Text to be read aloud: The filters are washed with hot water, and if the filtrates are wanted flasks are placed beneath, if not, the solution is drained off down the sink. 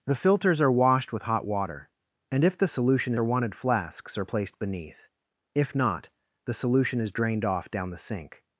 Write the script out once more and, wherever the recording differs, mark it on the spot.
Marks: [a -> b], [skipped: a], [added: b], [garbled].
The filters are washed with hot water, and if the [filtrates -> solution] are wanted flasks are placed beneath, if not, the solution is drained off down the sink.